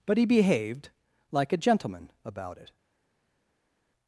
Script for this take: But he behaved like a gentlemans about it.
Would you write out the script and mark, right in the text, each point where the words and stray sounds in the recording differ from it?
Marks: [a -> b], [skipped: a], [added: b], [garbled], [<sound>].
But he behaved like a [gentlemans -> gentleman] about it.